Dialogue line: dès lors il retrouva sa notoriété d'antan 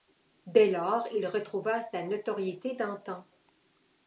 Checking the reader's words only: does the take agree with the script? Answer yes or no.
yes